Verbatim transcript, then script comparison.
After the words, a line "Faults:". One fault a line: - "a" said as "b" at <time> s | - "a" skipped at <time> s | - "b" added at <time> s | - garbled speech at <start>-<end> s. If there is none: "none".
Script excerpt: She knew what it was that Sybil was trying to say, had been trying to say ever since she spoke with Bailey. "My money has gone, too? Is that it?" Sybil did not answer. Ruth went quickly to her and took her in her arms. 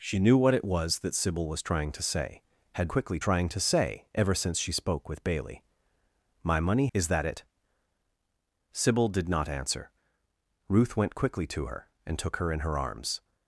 She knew what it was that Sybil was trying to say, had quickly trying to say ever since she spoke with Bailey. "My money? Is that it?" Sybil did not answer. Ruth went quickly to her and took her in her arms.
Faults:
- "been" said as "quickly" at 2.9 s
- "has gone too" skipped at 6.9 s